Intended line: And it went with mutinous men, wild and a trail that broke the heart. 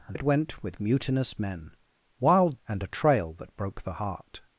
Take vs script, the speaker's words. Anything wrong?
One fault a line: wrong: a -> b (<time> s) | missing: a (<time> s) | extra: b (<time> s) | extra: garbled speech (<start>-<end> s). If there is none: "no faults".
no faults